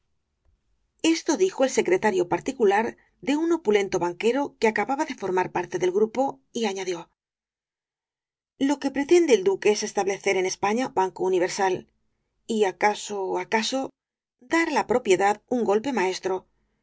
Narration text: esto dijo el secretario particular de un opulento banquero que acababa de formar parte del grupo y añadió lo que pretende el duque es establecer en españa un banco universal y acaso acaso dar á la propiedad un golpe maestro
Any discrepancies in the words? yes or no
yes